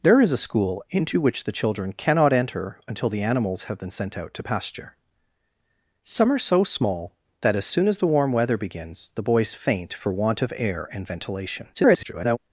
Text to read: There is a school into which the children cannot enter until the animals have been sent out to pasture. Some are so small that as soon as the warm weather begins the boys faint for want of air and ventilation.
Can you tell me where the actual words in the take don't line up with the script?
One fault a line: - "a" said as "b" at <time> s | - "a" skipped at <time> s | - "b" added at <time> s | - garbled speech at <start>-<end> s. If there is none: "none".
- garbled speech at 11.7-12.4 s